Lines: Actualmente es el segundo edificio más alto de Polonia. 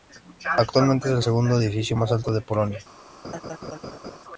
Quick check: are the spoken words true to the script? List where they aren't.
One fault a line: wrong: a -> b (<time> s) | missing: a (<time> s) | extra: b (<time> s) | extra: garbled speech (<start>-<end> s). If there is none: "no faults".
no faults